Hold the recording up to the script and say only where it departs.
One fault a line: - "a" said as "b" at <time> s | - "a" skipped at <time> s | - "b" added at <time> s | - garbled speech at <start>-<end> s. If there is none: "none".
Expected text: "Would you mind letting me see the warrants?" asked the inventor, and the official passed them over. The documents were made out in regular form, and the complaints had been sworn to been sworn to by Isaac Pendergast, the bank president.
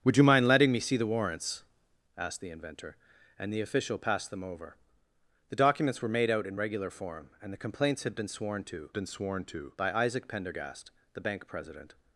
none